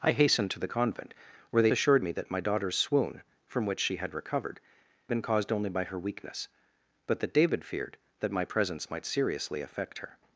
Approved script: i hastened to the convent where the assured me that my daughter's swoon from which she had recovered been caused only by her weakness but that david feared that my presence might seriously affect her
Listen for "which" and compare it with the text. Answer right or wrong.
right